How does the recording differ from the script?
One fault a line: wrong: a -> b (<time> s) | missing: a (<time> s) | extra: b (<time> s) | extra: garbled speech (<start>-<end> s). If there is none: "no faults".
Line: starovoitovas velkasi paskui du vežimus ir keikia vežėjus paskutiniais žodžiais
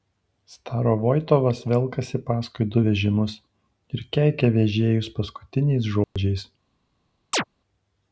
no faults